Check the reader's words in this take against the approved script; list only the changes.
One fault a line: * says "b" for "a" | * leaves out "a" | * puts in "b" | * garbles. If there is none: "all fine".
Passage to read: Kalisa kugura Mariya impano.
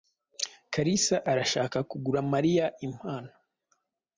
* puts in "arashaka"